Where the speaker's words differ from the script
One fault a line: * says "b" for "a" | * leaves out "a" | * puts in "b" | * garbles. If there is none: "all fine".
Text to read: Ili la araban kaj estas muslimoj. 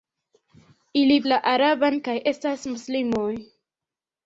all fine